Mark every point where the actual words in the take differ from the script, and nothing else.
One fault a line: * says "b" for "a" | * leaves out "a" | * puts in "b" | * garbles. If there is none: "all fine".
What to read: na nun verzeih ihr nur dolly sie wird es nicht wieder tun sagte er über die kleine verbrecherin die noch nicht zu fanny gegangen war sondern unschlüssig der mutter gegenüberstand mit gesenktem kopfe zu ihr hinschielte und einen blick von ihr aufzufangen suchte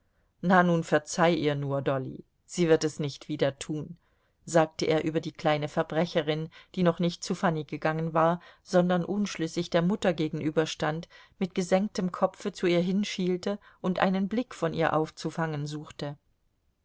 all fine